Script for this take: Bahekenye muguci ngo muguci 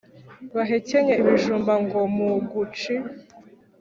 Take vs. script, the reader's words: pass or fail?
fail